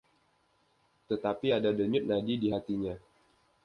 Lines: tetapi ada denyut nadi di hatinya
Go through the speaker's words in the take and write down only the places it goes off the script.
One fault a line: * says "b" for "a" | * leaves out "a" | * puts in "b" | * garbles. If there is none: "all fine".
all fine